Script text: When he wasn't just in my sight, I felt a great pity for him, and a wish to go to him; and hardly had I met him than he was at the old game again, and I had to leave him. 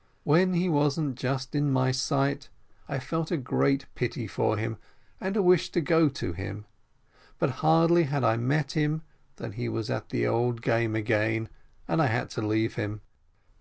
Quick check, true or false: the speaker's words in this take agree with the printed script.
false